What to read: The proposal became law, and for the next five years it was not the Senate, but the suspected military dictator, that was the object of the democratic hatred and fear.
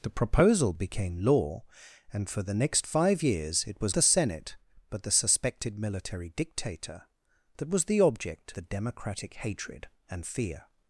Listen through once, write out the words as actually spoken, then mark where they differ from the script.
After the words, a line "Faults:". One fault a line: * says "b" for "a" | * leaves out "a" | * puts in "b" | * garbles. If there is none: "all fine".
The proposal became law, and for the next five years it was the Senate, but the suspected military dictator, that was the object the democratic hatred and fear.
Faults:
* leaves out "not"
* leaves out "of"